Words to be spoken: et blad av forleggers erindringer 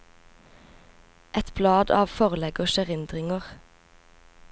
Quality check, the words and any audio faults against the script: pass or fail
pass